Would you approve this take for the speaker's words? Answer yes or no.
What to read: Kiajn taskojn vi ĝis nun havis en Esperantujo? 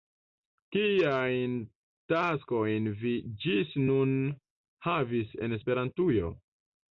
yes